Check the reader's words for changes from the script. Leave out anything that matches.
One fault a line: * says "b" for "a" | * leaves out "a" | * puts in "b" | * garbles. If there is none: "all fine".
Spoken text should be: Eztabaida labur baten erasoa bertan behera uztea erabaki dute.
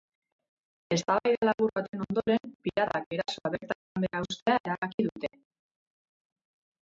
* puts in "ondoren piratak"